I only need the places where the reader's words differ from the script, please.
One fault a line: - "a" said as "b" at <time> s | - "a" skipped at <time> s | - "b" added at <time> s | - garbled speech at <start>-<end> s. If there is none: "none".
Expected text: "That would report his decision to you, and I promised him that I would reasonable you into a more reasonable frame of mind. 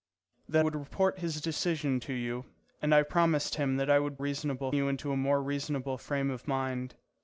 none